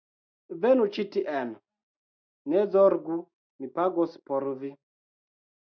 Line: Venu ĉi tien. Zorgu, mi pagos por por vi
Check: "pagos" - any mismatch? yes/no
no